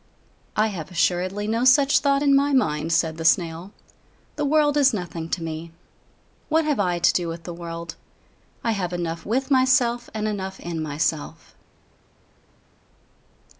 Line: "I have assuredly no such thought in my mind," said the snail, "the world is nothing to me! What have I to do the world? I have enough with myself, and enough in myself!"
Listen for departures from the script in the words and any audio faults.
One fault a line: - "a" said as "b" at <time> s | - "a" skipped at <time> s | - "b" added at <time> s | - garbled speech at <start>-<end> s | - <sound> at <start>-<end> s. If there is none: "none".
- "with" added at 7.3 s